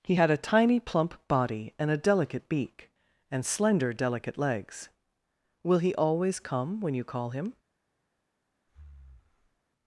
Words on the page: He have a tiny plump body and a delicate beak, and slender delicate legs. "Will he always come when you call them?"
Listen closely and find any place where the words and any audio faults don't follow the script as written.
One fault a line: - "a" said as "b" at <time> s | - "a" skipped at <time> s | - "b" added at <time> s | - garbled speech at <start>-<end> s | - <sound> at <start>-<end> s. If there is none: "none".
- "have" said as "had" at 0.1 s
- "them" said as "him" at 7.3 s
- breath at 8.7-9.6 s